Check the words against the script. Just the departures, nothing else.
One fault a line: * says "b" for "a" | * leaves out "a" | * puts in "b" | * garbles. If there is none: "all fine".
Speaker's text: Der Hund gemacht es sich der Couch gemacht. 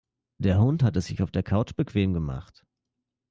* says "hat" for "gemacht"
* puts in "auf"
* puts in "bequem"